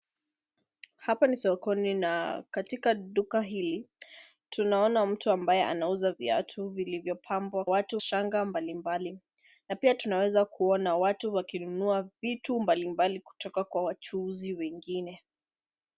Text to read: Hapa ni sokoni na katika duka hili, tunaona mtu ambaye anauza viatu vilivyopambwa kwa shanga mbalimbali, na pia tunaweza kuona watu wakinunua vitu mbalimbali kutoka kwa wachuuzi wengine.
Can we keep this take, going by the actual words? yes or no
no